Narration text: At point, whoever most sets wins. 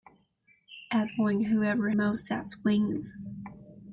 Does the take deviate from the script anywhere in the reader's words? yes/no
no